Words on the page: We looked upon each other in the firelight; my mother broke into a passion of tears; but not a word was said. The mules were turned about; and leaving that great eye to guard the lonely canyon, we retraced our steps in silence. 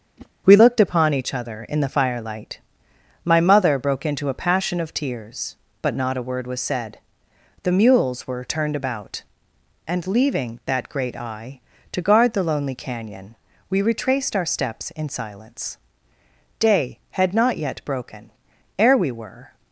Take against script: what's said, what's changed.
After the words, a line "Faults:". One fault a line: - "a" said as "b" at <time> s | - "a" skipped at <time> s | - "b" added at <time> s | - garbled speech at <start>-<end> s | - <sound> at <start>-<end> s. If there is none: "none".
We looked upon each other in the firelight; my mother broke into a passion of tears; but not a word was said. The mules were turned about; and leaving that great eye to guard the lonely canyon, we retraced our steps in silence. Day had not yet broken ere we were
Faults:
- whoosh at 0.2-0.3 s
- "Day had not yet broken ere we were" added at 16.6 s